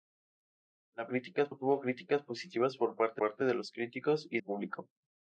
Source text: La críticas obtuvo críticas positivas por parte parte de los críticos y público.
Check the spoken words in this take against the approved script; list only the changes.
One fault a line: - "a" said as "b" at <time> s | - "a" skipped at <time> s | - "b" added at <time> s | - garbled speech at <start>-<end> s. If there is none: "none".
none